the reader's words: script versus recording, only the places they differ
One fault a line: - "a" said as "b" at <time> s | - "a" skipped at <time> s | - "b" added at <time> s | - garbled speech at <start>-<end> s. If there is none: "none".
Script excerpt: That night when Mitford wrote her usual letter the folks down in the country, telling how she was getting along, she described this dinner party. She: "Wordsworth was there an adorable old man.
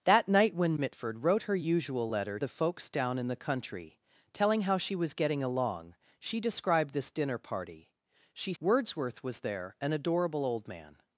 none